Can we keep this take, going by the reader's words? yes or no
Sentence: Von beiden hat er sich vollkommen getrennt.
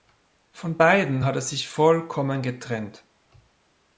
yes